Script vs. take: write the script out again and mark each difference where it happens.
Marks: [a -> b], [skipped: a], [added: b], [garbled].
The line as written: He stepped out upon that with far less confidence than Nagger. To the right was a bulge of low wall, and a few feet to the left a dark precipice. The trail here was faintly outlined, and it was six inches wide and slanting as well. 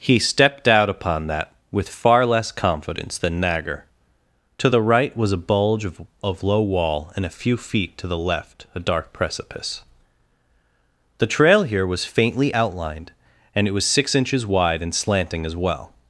He stepped out upon that with far less confidence than Nagger. To the right was a bulge of [added: of] low wall, and a few feet to the left a dark precipice. The trail here was faintly outlined, and it was six inches wide and slanting as well.